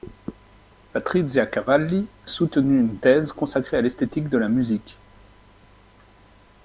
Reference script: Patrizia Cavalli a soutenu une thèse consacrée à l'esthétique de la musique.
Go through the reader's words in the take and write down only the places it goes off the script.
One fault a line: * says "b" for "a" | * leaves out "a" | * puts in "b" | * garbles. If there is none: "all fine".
* leaves out "a"